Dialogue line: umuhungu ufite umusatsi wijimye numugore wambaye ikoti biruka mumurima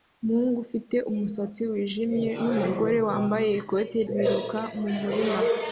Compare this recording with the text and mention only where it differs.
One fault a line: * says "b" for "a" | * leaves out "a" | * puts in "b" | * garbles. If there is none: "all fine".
all fine